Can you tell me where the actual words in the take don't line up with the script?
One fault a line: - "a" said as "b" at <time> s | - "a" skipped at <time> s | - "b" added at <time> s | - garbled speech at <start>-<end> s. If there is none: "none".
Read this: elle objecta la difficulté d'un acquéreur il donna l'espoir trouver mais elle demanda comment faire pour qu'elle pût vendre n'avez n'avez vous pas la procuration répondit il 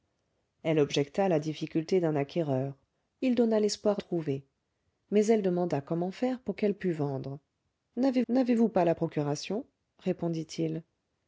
none